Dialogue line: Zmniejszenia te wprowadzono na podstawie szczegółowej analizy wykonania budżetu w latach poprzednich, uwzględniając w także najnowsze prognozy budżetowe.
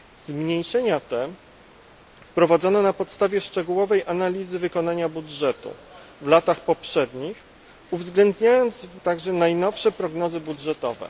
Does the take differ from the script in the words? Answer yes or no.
no